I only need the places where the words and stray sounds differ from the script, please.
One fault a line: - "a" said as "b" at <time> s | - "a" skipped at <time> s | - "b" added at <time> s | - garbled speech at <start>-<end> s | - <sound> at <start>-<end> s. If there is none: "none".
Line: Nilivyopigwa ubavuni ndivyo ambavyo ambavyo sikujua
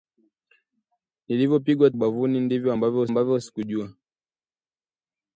none